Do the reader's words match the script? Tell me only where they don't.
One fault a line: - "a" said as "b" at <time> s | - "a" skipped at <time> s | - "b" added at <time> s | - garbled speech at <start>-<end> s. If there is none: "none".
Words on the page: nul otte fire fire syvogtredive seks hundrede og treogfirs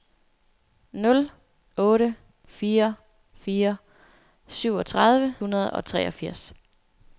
- "seks" skipped at 5.3 s